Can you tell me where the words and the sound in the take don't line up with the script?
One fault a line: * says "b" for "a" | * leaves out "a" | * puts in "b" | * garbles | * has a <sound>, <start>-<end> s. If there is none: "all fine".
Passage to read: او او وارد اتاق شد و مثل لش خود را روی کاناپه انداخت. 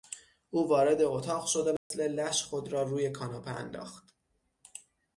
* leaves out "او"
* has a dropout, 1.8-1.9 s